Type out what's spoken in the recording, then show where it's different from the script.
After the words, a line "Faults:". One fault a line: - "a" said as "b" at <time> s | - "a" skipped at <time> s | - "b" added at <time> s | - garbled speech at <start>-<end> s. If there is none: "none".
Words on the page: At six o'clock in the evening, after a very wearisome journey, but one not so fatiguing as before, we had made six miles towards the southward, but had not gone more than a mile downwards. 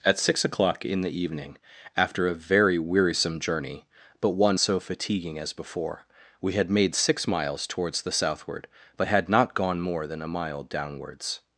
At six o'clock in the evening, after a very wearisome journey, but one so fatiguing as before, we had made six miles towards the southward, but had not gone more than a mile downwards.
Faults:
- "not" skipped at 4.6 s